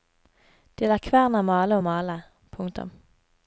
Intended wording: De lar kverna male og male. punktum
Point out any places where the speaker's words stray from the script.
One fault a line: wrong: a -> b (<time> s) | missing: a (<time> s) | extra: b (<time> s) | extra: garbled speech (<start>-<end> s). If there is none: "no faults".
no faults